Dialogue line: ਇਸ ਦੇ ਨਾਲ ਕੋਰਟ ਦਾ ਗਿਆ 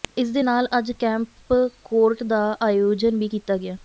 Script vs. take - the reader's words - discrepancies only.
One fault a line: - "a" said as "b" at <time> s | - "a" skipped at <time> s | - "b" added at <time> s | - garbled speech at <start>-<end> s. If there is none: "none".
- "ਅੱਜ ਕੈਂਪ" added at 0.8 s
- "ਆਯੋਜਨ ਵੀ ਕੀਤਾ" added at 2.6 s